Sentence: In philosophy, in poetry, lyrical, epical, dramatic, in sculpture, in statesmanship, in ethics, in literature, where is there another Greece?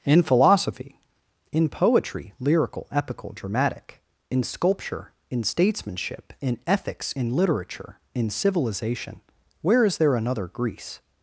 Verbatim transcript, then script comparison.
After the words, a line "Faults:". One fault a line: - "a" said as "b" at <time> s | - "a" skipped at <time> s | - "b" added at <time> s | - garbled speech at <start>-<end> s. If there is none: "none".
In philosophy, in poetry, lyrical, epical, dramatic, in sculpture, in statesmanship, in ethics, in literature, in civilization, where is there another Greece?
Faults:
- "in civilization" added at 8.1 s